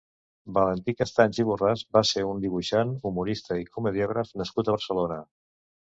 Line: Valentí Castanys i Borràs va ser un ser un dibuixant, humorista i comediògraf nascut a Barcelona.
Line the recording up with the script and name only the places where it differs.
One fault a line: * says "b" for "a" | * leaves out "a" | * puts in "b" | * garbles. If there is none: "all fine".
* leaves out "ser un"